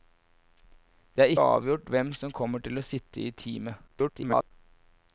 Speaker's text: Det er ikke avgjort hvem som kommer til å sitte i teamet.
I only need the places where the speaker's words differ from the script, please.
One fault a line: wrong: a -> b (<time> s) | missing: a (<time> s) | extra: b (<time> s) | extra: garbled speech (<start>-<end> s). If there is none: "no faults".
missing: ikke (1.3 s)
extra: garbled speech (3.9-4.5 s)